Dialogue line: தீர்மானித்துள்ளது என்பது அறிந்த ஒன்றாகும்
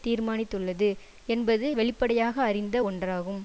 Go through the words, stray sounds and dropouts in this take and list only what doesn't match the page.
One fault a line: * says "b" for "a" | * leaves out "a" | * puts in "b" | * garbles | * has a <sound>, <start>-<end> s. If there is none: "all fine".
* puts in "வெளிப்படையாக"